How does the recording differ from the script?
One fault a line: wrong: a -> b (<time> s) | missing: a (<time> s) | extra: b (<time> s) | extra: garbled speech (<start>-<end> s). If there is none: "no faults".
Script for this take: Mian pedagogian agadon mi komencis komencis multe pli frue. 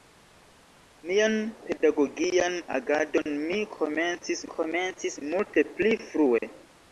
no faults